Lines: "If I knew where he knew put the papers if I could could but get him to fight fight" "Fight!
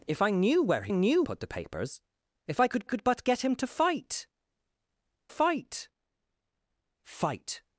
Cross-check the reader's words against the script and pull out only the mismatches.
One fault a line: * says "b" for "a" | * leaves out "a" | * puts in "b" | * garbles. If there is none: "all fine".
all fine